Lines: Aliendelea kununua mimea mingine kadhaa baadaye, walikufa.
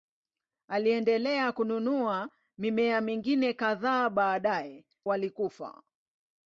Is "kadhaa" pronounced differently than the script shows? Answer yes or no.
no